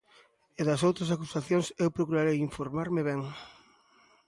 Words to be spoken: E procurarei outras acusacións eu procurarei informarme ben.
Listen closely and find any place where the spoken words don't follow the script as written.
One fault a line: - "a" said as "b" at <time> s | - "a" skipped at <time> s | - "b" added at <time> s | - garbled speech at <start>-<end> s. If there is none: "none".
- "procurarei" said as "das" at 0.7 s